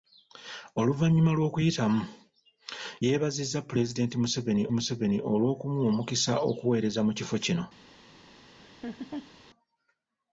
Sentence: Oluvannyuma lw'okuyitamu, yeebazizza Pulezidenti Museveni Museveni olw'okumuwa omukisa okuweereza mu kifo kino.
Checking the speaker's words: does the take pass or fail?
pass